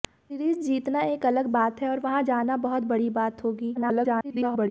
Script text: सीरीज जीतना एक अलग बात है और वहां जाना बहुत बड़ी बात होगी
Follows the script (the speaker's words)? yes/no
no